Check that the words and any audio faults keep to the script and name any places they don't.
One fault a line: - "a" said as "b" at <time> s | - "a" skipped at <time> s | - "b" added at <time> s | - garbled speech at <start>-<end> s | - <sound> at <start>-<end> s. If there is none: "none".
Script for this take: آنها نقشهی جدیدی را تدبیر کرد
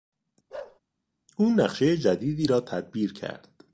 - bark at 0.5-0.8 s
- "آنها" said as "او" at 1.4 s